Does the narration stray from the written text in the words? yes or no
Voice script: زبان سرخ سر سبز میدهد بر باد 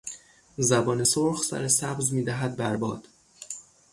no